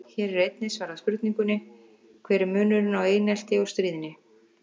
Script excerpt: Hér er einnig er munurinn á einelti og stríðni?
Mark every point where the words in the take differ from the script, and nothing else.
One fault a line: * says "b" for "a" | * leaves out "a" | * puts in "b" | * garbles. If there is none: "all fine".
* puts in "svarað spurningunni Hver"